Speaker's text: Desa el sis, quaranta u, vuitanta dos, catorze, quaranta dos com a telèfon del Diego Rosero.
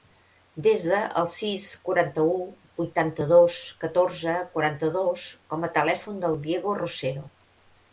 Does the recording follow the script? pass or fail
pass